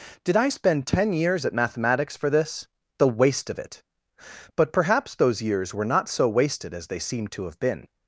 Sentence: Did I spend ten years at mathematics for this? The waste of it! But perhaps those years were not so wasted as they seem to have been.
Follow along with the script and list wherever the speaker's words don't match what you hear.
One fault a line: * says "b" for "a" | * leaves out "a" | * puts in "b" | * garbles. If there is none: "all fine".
all fine